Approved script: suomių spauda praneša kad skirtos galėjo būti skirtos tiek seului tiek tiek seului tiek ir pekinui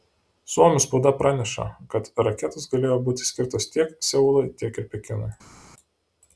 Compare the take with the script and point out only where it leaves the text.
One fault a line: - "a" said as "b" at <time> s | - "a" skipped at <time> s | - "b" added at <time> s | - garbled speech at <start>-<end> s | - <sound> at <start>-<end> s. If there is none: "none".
- "skirtos" said as "raketos" at 2.3 s
- "tiek seului tiek" skipped at 4.8 s